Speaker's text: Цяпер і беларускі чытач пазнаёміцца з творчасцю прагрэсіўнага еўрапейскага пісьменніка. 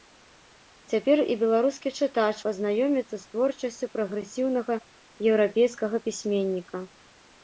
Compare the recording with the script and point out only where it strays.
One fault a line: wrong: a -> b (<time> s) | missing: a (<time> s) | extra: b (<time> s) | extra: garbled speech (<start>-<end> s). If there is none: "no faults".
no faults